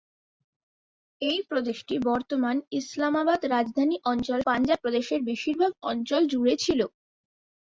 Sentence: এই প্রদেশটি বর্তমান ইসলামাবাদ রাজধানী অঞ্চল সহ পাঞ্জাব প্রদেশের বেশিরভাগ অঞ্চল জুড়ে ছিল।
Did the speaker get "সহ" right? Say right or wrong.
wrong